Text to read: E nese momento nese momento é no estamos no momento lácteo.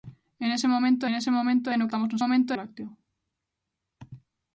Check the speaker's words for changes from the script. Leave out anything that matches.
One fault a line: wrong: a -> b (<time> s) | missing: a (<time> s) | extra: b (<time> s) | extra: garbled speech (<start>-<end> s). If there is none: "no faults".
no faults